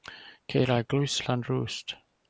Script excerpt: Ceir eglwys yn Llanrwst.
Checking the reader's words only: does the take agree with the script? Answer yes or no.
yes